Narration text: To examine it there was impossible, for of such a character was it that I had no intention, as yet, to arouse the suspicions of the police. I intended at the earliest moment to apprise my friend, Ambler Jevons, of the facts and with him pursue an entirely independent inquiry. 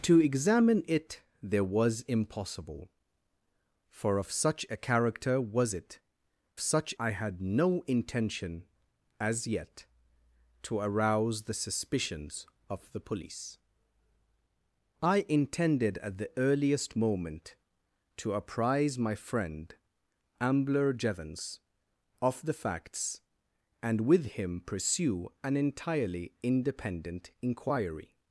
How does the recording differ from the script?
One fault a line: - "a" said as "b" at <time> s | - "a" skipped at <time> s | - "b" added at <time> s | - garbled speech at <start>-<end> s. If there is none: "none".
- "that" said as "such" at 6.6 s